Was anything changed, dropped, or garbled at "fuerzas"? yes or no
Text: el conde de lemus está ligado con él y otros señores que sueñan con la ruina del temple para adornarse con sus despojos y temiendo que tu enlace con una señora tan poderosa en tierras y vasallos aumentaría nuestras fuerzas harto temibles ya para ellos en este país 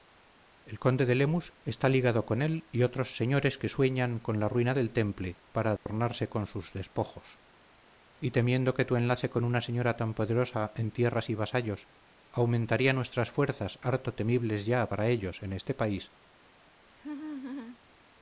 no